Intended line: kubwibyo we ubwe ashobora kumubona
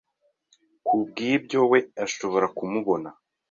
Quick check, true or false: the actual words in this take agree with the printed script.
false